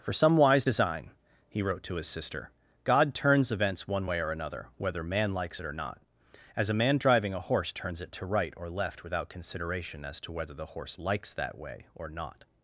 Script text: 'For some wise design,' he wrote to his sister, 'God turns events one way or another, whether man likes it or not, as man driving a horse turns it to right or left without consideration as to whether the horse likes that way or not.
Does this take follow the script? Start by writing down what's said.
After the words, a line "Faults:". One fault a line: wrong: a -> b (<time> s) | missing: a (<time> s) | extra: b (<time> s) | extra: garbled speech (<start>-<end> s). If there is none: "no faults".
'For some wise design,' he wrote to his sister, 'God turns events one way or another, whether man likes it or not, as a man driving a horse turns it to right or left without consideration as to whether the horse likes that way or not.
Faults:
extra: a (6.7 s)